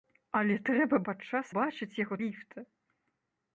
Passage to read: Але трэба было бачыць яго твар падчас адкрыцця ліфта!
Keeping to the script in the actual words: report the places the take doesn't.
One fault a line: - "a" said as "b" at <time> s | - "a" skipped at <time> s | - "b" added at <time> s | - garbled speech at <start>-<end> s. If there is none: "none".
- "было" said as "падчас" at 1.1 s
- "твар падчас адкрыцця" skipped at 2.2 s